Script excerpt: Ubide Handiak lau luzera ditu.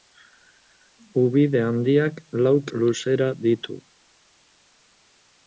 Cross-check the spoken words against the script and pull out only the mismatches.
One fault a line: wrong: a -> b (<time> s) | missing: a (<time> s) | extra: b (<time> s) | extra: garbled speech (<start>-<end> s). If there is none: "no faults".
no faults